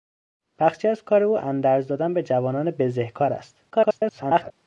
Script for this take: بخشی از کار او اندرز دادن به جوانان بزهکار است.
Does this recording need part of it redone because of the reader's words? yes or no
yes